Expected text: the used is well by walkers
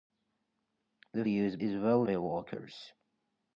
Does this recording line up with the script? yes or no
yes